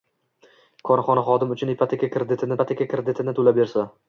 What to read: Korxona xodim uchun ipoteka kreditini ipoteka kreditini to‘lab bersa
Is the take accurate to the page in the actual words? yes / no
yes